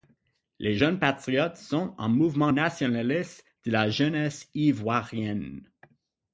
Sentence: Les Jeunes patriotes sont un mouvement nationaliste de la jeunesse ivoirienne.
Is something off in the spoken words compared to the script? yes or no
no